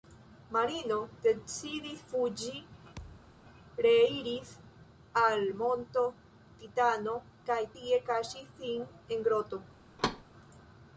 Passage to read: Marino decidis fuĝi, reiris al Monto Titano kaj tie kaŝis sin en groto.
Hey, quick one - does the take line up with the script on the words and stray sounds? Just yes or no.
no